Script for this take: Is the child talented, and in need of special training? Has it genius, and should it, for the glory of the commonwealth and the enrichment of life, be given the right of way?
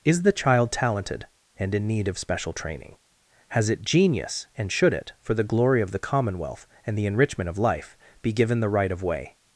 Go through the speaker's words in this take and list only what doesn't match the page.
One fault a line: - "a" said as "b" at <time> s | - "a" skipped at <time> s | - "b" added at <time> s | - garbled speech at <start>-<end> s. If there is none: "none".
none